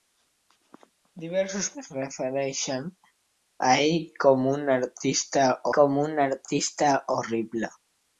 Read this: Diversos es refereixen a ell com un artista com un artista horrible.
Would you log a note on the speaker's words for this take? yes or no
no